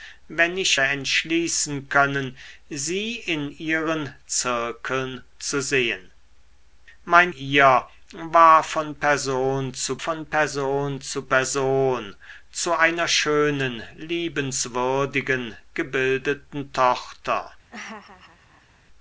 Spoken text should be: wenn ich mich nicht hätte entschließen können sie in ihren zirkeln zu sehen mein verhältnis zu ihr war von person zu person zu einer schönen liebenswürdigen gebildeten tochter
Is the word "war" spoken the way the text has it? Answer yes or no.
no